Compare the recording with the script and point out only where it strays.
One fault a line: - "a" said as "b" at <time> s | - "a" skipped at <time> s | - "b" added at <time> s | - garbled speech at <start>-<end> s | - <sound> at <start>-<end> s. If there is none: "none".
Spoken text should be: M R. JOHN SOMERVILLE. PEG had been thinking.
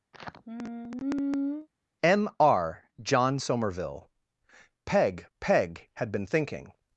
- sigh at 0.1-1.7 s
- "PEG" added at 5.4 s